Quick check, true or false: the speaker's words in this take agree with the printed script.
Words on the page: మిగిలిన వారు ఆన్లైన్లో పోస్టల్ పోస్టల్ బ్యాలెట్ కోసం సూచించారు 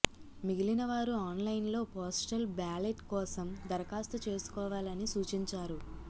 false